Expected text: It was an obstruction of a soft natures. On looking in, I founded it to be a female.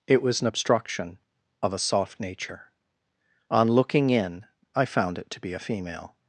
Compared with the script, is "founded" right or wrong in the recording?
wrong